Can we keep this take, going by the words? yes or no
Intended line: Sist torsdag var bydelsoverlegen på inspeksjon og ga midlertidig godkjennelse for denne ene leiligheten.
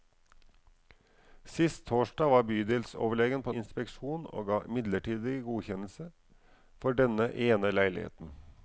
yes